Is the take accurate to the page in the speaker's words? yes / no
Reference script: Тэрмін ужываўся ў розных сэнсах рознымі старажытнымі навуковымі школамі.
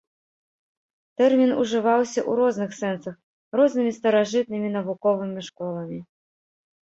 yes